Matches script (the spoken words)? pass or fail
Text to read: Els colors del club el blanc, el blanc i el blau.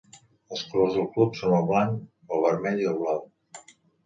fail